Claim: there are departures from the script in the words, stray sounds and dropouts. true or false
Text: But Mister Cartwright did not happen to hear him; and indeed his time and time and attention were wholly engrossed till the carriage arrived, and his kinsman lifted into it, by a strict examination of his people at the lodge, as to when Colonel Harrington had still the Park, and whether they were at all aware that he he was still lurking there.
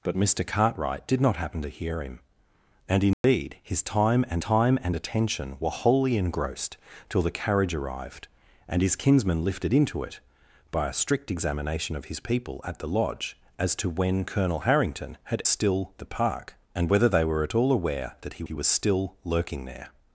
true